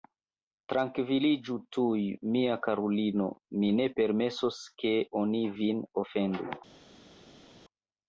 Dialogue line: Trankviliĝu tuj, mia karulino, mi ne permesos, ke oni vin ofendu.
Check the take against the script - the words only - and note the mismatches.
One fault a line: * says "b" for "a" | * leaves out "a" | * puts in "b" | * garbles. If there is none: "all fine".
all fine